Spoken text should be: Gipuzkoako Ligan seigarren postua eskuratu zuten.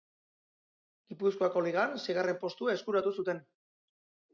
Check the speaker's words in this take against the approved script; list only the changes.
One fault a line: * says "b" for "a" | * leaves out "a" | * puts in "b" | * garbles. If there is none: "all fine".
all fine